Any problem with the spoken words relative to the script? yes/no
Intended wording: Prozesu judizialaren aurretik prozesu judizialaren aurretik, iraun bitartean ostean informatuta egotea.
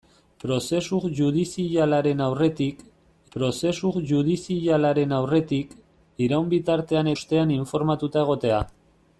no